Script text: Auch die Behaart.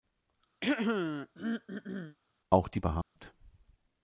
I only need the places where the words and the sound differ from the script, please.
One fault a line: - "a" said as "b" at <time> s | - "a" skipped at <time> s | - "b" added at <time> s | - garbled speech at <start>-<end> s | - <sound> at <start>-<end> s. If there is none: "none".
- throat clearing at 0.6-2.2 s
- dropout at 3.0-3.2 s